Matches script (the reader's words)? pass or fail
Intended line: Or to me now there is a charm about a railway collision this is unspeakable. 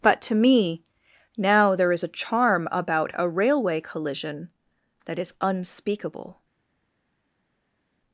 fail